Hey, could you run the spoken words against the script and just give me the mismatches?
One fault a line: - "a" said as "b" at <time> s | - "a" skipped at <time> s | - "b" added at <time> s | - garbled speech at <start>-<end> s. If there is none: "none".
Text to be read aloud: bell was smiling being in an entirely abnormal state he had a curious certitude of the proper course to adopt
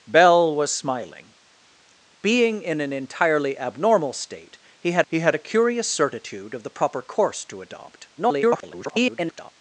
- "he had" added at 5.1 s
- garbled speech at 8.2-9.5 s